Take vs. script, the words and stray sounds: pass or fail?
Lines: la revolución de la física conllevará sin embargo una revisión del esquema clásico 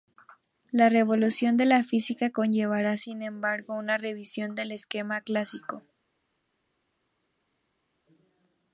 pass